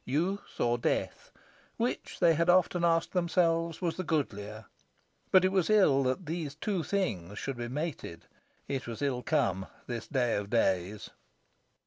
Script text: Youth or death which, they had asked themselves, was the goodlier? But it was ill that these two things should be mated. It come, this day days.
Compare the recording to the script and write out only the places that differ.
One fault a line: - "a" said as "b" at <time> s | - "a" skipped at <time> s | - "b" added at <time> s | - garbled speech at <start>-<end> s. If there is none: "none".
- "often" added at 2.5 s
- "was ill" added at 8.9 s
- "of" added at 10.4 s